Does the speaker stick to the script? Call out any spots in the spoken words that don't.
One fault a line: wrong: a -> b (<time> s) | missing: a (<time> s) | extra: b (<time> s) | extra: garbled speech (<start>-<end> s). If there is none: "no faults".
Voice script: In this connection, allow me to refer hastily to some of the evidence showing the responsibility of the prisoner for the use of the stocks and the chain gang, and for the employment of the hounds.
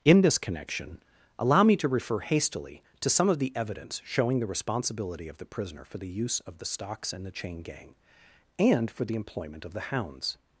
no faults